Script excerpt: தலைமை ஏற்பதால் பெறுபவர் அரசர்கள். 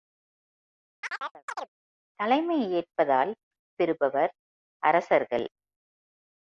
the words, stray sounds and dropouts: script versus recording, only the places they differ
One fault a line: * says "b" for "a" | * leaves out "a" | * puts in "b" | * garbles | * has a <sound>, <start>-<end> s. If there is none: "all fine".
* has a chirp, 1.0-1.7 s